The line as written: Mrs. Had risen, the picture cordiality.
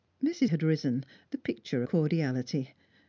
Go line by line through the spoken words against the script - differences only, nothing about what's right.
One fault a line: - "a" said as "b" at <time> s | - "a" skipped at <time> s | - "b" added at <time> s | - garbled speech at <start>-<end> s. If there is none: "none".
none